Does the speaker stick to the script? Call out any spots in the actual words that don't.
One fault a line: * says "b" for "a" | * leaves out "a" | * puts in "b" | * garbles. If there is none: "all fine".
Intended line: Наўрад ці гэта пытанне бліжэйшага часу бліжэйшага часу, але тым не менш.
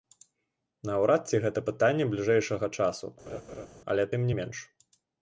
* leaves out "бліжэйшага часу"